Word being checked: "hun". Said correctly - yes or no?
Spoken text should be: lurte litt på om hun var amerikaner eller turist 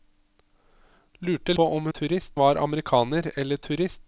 no